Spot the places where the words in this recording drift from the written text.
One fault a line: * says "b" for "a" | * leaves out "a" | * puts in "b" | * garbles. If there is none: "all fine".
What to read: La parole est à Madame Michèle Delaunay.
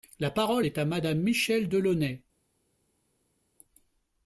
all fine